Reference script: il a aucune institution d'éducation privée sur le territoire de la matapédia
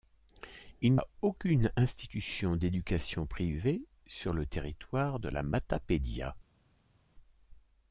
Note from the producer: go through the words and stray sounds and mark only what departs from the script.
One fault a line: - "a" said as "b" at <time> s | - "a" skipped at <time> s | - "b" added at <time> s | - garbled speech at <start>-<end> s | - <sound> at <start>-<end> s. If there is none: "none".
none